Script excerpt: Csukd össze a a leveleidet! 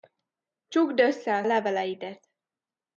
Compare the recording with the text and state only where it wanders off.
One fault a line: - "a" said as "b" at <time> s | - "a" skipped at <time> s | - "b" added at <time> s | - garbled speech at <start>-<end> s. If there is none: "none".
none